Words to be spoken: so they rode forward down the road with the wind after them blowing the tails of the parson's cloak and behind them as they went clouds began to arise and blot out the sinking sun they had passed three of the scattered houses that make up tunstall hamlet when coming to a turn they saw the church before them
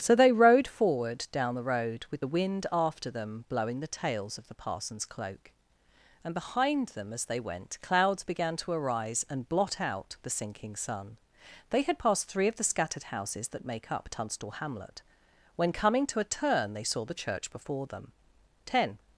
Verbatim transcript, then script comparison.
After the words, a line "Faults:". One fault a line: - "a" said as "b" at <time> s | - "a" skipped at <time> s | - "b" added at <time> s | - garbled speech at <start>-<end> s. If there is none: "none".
so they rode forward down the road with the wind after them blowing the tails of the parson's cloak and behind them as they went clouds began to arise and blot out the sinking sun they had passed three of the scattered houses that make up tunstall hamlet when coming to a turn they saw the church before them ten
Faults:
- "ten" added at 18.6 s